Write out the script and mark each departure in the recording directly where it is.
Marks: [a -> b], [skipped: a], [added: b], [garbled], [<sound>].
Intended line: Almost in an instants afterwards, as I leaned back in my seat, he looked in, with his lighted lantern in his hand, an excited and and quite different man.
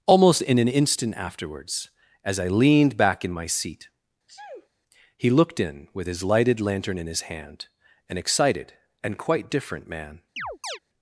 Almost in an [instants -> instant] afterwards, as I leaned back in my seat, [sneeze] he looked in, with his lighted lantern in his hand, an excited and [skipped: and] quite different man. [chirp]